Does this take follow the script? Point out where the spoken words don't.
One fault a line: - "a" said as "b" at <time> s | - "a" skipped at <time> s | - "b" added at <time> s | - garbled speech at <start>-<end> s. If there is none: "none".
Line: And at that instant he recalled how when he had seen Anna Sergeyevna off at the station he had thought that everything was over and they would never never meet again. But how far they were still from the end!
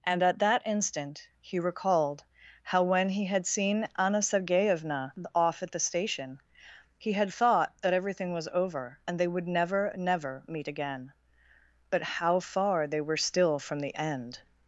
none